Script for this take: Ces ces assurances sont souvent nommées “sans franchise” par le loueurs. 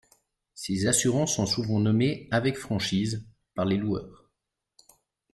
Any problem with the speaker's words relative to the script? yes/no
yes